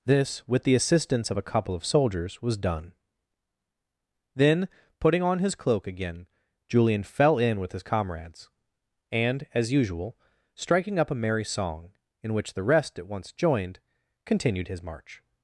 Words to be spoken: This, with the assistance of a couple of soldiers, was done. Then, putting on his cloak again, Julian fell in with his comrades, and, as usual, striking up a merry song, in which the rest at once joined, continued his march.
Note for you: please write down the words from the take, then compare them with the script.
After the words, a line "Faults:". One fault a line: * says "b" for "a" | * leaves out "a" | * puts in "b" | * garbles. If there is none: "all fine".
This, with the assistance of a couple of soldiers, was done. Then, putting on his cloak again, Julian fell in with his comrades, and, as usual, striking up a merry song, in which the rest at once joined, continued his march.
Faults:
all fine